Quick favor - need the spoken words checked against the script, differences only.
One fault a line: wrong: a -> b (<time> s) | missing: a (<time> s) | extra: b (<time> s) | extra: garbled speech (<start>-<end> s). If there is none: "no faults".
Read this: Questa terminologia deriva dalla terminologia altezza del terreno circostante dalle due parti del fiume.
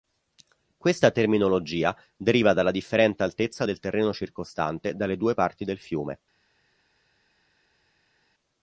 wrong: terminologia -> differente (2.7 s)